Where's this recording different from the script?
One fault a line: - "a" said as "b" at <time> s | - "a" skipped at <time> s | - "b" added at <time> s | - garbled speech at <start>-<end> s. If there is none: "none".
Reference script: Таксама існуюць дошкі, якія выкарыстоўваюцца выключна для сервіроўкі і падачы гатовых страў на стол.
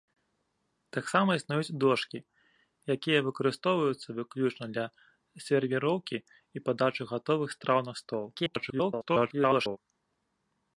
- garbled speech at 8.3-9.8 s